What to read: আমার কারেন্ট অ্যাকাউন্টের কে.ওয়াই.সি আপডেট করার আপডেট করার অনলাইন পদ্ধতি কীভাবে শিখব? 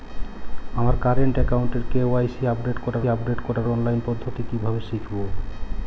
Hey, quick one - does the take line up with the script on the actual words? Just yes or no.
yes